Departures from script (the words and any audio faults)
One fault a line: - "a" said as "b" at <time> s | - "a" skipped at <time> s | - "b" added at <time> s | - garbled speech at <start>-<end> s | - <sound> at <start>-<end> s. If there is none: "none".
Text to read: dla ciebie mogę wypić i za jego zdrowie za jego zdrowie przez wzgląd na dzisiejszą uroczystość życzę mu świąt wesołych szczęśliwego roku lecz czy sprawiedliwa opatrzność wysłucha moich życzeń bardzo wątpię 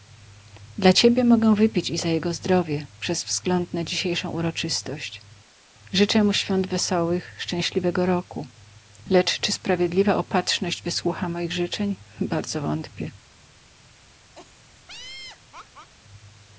- "za jego zdrowie" skipped at 2.9 s
- laugh at 14.4-15.9 s